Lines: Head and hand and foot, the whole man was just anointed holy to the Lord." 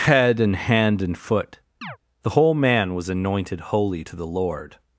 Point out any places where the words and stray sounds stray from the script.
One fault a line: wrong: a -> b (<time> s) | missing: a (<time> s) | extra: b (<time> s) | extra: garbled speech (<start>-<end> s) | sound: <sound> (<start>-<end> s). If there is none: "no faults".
sound: chirp (1.8-2.0 s)
missing: just (3.1 s)